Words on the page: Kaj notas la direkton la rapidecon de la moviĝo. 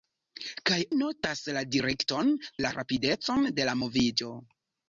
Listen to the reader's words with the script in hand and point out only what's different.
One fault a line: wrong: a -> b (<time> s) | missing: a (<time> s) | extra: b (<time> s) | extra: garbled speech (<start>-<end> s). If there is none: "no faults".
no faults